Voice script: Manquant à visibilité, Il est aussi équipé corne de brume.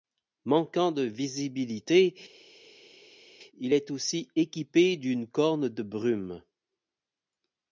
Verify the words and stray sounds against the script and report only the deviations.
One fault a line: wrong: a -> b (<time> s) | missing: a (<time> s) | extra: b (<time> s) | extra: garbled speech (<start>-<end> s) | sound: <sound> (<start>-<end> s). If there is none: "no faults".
wrong: à -> de (0.9 s)
extra: d'une (5.0 s)